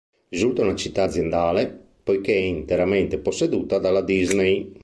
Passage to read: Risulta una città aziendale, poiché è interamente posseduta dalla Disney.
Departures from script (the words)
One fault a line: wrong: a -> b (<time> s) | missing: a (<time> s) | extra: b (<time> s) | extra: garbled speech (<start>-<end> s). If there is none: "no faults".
no faults